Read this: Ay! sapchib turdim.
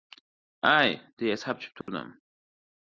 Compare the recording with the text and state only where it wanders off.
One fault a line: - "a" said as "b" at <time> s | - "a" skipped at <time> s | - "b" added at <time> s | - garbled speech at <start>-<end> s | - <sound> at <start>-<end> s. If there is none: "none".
- "deya" added at 1.2 s
- dropout at 1.8-1.9 s